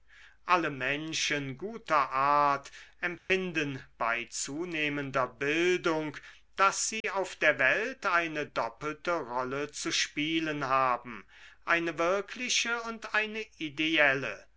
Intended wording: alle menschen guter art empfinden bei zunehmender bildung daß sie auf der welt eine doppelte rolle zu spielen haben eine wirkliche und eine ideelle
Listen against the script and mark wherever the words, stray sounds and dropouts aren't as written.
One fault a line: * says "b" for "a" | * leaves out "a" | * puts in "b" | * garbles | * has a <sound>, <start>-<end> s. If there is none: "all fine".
* has a dropout, 3.2-3.3 s
* has a dropout, 7.0-7.0 s